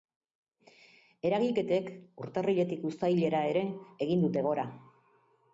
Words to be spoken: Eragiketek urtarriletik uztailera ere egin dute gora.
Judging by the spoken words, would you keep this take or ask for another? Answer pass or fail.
pass